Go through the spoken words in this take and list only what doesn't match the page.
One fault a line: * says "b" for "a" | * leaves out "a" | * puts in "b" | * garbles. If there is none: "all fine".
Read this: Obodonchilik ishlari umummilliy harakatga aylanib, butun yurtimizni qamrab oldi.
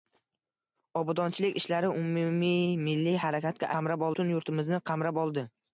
* says "qamrab" for "aylanib"